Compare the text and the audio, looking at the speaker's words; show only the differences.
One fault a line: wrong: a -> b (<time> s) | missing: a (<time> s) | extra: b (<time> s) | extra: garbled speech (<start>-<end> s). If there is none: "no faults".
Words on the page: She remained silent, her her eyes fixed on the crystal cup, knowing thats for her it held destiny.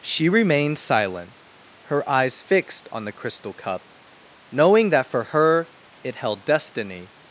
missing: her (2.1 s)
wrong: thats -> that (4.9 s)